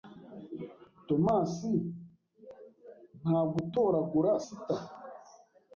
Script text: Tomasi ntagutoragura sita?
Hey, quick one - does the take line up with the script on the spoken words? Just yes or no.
yes